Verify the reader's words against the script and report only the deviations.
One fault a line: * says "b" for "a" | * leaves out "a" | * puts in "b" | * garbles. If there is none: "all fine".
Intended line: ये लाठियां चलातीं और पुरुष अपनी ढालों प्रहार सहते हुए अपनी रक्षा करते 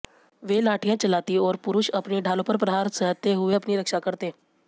* says "वे" for "ये"
* puts in "पर"